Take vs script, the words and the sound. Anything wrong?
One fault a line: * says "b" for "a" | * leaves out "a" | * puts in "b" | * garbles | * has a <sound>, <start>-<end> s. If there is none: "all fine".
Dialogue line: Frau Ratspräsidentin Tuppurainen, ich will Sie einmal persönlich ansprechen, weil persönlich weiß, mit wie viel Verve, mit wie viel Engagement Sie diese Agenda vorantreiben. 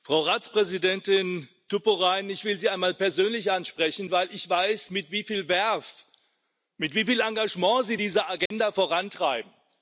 * says "ich" for "persönlich"
* has a dropout, 8.5-8.5 s